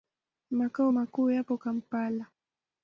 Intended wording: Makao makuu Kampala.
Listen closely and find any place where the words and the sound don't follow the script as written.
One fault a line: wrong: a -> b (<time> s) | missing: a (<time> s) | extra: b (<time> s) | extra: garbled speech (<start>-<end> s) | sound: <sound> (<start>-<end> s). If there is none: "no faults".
extra: yapo (1.3 s)